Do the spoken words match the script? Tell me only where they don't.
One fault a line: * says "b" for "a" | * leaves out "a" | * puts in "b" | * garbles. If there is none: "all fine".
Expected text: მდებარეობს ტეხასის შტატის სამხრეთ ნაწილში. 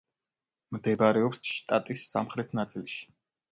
* leaves out "ტეხასის"